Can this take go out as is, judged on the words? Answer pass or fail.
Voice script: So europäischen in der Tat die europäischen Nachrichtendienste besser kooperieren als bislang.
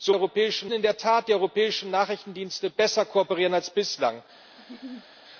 pass